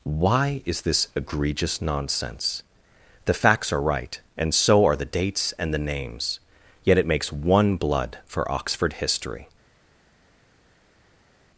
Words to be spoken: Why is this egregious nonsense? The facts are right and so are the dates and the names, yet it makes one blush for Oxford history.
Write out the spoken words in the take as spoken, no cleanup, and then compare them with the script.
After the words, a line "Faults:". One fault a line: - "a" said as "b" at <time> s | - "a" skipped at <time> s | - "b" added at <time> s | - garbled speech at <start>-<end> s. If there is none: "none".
Why is this egregious nonsense? The facts are right and so are the dates and the names, yet it makes one blood for Oxford history.
Faults:
- "blush" said as "blood" at 7.8 s